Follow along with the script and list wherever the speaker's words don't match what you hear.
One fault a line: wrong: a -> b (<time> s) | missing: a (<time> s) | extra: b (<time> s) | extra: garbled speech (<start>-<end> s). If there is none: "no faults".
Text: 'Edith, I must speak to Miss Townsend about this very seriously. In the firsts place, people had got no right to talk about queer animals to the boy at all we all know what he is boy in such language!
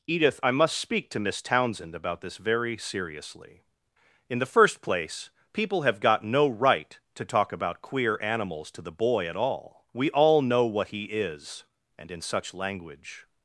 wrong: firsts -> first (4.4 s)
wrong: had -> have (5.8 s)
wrong: boy -> and (12.0 s)